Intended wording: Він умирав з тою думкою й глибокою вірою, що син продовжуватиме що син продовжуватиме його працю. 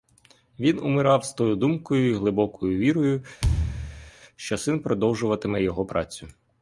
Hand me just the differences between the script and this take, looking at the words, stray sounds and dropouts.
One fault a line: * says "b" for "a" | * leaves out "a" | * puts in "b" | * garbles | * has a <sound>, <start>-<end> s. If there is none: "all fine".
* has a thud, 3.4-4.1 s
* leaves out "що син продовжуватиме"